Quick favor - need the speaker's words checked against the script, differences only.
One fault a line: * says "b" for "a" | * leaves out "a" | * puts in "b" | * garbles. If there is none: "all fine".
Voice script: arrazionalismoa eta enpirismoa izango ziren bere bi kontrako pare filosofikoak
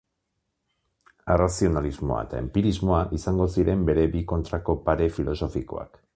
all fine